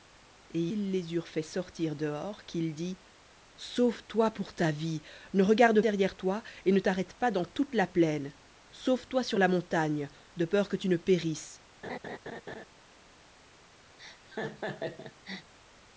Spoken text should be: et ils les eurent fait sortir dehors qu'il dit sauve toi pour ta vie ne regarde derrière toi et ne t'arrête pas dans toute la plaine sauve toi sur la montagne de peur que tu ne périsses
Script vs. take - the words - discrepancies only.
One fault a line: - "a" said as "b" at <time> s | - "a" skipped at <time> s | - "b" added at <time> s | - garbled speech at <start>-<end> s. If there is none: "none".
none